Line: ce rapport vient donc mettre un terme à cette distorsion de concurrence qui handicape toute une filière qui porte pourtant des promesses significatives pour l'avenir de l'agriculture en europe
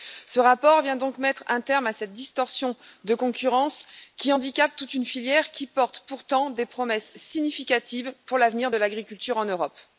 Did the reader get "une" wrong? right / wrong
right